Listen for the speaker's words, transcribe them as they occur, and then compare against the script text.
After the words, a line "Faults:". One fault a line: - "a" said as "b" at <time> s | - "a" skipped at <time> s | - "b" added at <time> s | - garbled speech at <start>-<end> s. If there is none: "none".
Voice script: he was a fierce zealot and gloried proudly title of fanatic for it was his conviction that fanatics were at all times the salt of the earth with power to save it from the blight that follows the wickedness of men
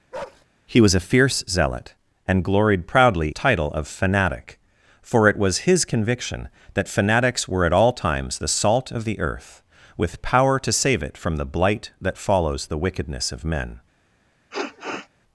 he was a fierce zealot and gloried proudly title of fanatic for it was his conviction that fanatics were at all times the salt of the earth with power to save it from the blight that follows the wickedness of men
Faults:
none